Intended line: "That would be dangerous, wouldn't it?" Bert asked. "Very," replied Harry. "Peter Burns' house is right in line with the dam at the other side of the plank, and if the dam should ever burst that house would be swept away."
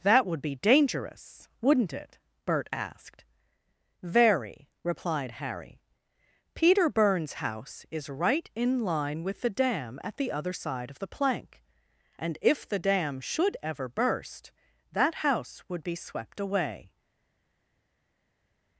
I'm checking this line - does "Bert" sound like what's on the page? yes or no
yes